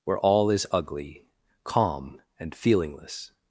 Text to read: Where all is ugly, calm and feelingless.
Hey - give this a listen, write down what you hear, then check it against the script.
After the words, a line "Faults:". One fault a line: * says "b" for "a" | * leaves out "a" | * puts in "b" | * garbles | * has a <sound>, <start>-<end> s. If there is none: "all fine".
Where all is ugly, calm and feelingless.
Faults:
all fine